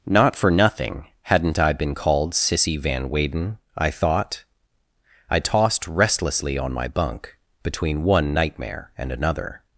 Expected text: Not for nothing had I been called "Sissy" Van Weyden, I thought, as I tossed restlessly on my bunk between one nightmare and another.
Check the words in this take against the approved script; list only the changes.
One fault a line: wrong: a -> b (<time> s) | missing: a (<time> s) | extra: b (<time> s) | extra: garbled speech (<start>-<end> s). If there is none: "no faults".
wrong: had -> hadn't (1.2 s)
missing: as (4.4 s)